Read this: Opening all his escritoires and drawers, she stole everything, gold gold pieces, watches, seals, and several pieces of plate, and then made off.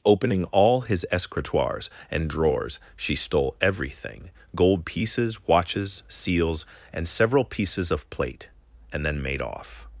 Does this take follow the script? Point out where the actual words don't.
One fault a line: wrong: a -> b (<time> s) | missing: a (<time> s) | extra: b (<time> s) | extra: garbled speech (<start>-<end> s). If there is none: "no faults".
missing: gold (4.8 s)